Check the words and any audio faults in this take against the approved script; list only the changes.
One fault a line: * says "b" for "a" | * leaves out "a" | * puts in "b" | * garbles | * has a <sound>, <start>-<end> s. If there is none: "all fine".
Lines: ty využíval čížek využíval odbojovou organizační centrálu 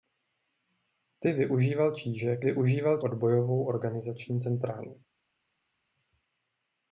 all fine